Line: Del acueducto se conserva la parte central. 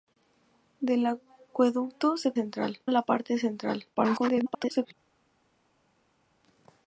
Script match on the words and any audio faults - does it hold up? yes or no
no